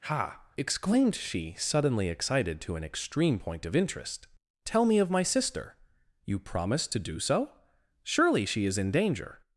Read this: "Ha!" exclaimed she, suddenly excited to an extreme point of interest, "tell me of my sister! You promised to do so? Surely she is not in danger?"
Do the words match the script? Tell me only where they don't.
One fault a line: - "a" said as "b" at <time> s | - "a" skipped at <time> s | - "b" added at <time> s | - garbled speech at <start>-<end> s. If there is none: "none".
- "not" skipped at 8.8 s